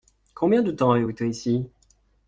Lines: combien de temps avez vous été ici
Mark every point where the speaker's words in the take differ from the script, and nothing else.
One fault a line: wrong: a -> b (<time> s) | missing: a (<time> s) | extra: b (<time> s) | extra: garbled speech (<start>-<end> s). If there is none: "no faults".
no faults